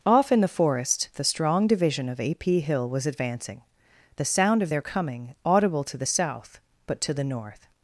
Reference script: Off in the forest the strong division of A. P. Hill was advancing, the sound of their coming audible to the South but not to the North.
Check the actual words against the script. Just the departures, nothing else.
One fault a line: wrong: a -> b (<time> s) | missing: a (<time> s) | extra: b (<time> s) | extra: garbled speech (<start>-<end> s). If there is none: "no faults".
missing: not (7.0 s)